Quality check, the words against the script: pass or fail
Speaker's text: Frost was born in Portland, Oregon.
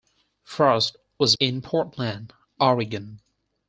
fail